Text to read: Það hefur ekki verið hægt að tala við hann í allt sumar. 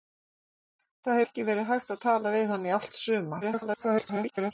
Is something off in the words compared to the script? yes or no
yes